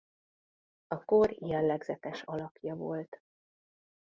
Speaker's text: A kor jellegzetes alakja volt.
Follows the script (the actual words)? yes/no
yes